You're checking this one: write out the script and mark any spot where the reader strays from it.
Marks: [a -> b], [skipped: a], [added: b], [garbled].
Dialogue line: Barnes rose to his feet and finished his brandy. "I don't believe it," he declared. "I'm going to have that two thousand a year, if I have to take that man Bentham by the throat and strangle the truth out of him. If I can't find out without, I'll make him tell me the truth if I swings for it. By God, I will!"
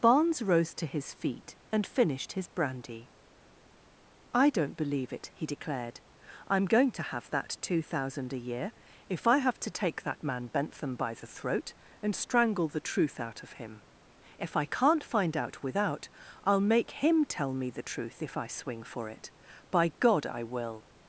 Barnes rose to his feet and finished his brandy. "I don't believe it," he declared. "I'm going to have that two thousand a year, if I have to take that man Bentham by the throat and strangle the truth out of him. If I can't find out without, I'll make him tell me the truth if I [swings -> swing] for it. By God, I will!"